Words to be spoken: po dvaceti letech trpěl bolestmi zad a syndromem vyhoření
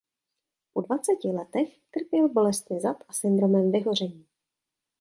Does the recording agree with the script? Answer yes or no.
yes